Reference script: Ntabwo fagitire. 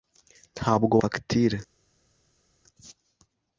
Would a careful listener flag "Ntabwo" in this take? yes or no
no